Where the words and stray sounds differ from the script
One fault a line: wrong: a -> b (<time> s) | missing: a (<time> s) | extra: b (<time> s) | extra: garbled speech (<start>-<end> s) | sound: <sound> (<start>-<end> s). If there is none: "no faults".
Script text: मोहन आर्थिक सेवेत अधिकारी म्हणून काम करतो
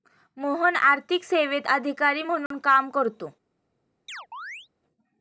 sound: dropout (2.5-2.5 s)
sound: chirp (4.1-4.7 s)